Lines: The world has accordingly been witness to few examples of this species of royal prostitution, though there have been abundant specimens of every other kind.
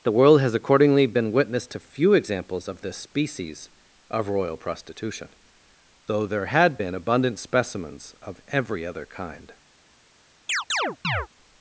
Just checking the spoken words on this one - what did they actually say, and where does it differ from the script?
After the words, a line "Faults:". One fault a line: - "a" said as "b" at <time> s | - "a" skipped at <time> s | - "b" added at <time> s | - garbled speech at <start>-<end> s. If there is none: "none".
The world has accordingly been witness to few examples of this species of royal prostitution, though there had been abundant specimens of every other kind.
Faults:
- "have" said as "had" at 6.5 s